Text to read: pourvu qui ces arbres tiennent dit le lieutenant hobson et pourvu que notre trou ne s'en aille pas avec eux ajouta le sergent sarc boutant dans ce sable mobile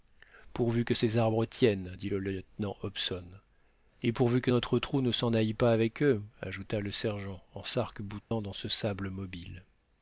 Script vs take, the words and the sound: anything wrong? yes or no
yes